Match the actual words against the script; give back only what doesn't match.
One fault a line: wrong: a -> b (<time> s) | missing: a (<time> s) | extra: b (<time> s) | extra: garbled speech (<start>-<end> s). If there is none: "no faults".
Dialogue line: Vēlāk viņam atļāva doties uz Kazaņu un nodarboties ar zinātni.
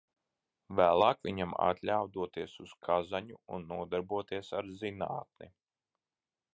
no faults